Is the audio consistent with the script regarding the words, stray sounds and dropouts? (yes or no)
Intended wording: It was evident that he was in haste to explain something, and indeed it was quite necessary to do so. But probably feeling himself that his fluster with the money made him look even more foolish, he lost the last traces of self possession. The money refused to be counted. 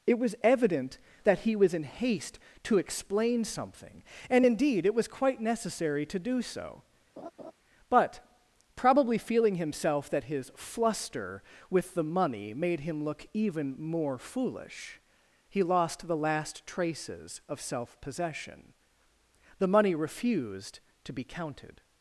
no